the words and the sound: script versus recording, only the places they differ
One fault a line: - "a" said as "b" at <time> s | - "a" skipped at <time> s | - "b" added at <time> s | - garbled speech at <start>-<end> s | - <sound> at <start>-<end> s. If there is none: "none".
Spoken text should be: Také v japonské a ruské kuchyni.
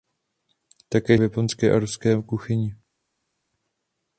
none